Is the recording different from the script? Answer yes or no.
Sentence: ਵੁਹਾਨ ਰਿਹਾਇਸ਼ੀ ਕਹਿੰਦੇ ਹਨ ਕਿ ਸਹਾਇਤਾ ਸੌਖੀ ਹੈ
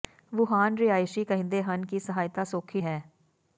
no